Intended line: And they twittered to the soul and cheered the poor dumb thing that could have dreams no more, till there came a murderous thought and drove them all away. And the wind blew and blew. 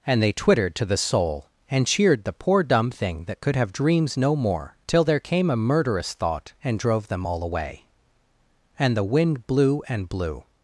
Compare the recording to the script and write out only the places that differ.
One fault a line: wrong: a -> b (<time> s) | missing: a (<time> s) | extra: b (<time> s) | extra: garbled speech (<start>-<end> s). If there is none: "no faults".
no faults